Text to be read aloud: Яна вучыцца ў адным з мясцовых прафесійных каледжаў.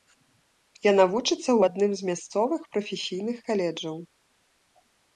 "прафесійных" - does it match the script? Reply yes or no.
yes